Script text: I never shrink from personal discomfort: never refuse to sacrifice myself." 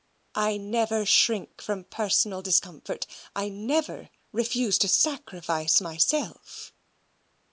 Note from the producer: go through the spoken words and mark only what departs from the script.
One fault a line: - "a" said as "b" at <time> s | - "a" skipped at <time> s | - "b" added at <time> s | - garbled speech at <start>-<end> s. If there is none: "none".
- "I" added at 3.4 s